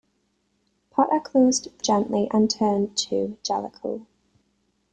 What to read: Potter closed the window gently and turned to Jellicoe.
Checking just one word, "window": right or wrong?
wrong